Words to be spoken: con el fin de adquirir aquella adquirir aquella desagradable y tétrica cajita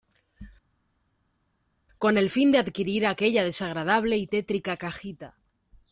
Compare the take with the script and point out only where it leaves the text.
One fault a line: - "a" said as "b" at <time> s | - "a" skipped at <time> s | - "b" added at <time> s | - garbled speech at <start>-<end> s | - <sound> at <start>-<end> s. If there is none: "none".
- "adquirir aquella" skipped at 3.4 s